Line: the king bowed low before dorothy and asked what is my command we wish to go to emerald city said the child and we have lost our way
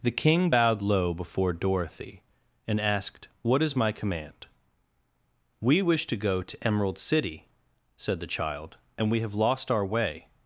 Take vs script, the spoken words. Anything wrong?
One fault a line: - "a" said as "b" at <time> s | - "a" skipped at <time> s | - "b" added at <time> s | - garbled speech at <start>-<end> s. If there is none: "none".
none